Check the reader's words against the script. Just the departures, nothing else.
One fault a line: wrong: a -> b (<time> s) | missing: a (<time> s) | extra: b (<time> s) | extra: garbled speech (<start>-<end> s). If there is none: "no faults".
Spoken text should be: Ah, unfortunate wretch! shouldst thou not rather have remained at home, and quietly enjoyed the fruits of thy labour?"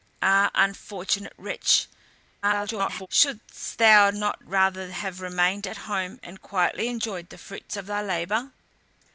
extra: garbled speech (2.4-3.1 s)